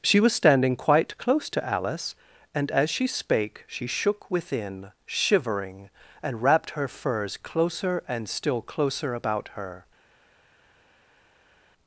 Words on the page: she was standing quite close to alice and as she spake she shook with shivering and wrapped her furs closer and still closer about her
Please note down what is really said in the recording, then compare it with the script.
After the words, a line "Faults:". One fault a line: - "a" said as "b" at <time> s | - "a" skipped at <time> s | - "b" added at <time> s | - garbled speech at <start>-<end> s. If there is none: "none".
she was standing quite close to alice and as she spake she shook within shivering and wrapped her furs closer and still closer about her
Faults:
- "with" said as "within" at 4.3 s